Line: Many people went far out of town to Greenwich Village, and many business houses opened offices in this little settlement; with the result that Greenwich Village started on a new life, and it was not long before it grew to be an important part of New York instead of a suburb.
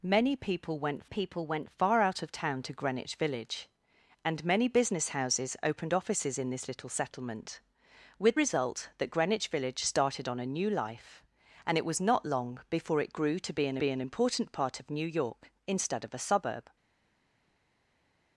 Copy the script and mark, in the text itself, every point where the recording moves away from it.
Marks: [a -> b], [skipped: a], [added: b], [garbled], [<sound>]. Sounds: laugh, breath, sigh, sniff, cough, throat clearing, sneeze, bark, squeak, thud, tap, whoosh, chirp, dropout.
Many people went [added: people went] far out of town to Greenwich Village, and many business houses opened offices in this little settlement; with [skipped: the] result that Greenwich Village started on a new life, and it was not long before it grew to be an [added: be an] important part of New York instead of a suburb.